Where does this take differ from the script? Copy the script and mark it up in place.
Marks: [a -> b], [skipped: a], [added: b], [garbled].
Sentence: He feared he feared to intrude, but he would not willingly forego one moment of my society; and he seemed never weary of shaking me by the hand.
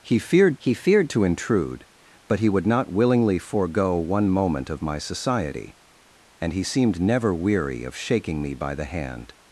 He feared he feared to intrude, but he would not willingly forego one moment of my society; and he seemed never weary of shaking me by the hand.